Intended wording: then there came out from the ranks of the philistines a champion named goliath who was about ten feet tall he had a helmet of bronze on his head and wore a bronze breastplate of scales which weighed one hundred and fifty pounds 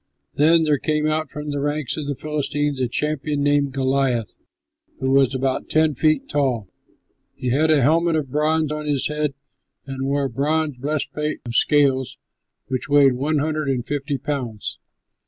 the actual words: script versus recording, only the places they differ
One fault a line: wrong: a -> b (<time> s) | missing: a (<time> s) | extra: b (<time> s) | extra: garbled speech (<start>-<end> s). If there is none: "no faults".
no faults